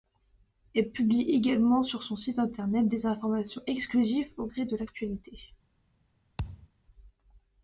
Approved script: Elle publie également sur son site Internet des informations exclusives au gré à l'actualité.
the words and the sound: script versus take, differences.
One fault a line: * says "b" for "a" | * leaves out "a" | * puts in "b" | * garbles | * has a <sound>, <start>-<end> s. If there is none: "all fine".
* says "de" for "à"
* has a thud, 6.4-6.7 s